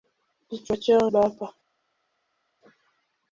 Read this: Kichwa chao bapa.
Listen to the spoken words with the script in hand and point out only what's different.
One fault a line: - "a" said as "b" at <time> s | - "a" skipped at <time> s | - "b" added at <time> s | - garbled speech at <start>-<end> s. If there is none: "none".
none